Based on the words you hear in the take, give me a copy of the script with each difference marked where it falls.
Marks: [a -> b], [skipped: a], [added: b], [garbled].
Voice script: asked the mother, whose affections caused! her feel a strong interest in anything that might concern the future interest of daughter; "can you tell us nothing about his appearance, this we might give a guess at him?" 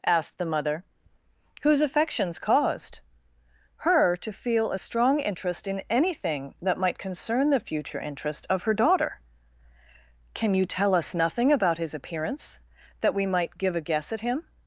asked the mother, whose affections caused! her [added: to] feel a strong interest in anything that might concern the future interest of [added: her] daughter; "can you tell us nothing about his appearance, [this -> that] we might give a guess at him?"